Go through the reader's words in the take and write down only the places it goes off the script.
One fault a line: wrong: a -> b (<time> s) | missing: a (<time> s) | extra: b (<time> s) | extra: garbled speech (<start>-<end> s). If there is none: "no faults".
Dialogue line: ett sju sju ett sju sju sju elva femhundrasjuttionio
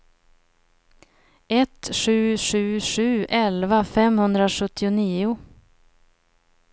missing: ett sju sju (2.8 s)